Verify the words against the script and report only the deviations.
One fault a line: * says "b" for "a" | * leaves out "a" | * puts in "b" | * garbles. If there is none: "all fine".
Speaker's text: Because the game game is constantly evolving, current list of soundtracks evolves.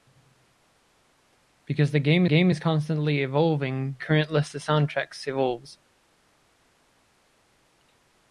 all fine